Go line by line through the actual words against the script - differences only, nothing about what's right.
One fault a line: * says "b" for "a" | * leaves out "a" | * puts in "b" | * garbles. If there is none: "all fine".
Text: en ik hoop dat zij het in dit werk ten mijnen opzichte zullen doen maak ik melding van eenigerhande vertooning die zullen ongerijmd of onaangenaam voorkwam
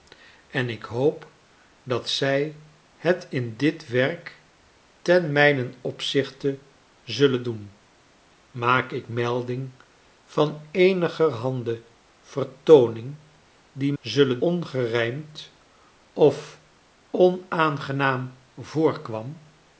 all fine